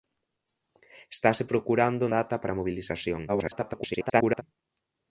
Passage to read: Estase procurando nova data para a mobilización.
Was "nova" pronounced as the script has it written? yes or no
no